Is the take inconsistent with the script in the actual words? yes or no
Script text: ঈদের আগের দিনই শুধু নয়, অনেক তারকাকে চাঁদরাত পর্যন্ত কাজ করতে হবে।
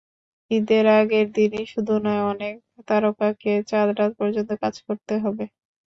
no